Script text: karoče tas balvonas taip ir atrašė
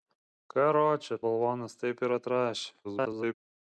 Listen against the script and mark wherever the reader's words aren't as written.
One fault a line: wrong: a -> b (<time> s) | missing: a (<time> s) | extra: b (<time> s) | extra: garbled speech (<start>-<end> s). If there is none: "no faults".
missing: tas (1.2 s)
extra: garbled speech (2.8-3.3 s)